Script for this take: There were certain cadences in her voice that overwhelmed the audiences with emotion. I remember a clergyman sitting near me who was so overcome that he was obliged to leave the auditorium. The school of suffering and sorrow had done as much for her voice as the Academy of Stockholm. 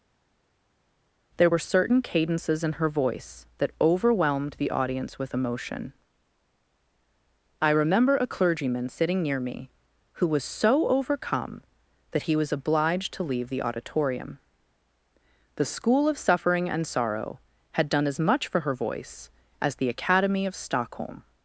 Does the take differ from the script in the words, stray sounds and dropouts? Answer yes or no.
yes